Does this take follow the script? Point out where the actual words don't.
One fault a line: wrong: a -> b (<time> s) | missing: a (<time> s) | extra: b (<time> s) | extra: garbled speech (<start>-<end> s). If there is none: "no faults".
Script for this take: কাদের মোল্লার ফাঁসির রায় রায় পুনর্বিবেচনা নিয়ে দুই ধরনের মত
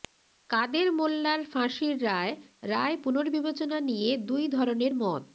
no faults